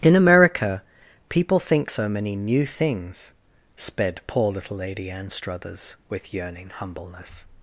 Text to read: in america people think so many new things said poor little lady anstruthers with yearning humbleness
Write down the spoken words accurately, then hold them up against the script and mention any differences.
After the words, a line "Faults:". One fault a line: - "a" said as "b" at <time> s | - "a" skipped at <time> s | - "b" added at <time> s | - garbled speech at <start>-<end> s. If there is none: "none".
in america people think so many new things sped poor little lady anstruthers with yearning humbleness
Faults:
- "said" said as "sped" at 3.7 s